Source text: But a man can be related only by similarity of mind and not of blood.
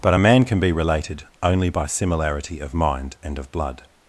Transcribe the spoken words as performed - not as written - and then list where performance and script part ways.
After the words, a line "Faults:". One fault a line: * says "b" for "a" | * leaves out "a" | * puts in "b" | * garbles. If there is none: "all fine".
But a man can be related only by similarity of mind and of blood.
Faults:
* leaves out "not"